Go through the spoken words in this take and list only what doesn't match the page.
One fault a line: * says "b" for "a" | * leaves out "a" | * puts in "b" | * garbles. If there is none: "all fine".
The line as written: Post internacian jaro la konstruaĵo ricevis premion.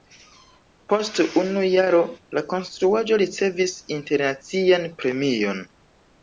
* says "unu" for "internacian"
* puts in "internacian"